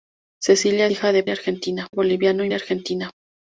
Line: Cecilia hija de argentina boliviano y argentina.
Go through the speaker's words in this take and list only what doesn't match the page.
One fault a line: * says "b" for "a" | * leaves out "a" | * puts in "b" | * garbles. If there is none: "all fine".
all fine